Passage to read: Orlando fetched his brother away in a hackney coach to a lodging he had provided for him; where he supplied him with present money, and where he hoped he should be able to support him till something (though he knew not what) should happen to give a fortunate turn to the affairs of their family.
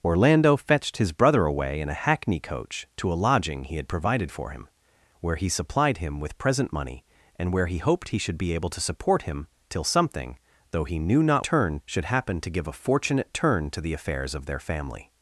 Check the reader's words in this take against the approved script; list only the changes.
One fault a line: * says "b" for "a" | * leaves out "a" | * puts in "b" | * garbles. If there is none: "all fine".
* says "turn" for "what"